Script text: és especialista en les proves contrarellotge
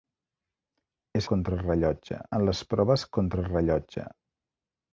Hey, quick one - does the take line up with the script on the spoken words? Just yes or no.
no